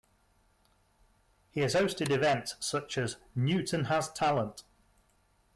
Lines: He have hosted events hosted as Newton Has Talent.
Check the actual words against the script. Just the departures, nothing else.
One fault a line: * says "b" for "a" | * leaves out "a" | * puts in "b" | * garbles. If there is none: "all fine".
* says "has" for "have"
* says "such" for "hosted"